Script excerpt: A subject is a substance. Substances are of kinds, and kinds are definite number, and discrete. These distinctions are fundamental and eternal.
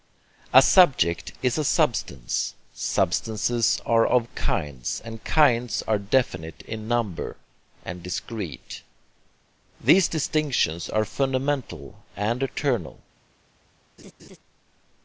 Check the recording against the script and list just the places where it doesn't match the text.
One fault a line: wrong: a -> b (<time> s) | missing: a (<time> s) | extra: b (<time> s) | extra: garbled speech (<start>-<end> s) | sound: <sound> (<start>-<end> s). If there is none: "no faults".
extra: in (6.7 s)
sound: laugh (14.0-14.4 s)